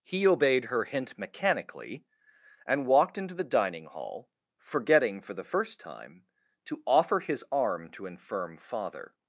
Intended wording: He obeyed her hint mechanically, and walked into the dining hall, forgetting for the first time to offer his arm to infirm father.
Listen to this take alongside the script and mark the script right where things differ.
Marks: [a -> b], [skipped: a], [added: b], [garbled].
He obeyed her hint mechanically, and walked into the dining hall, forgetting for the first time to offer his arm to infirm father.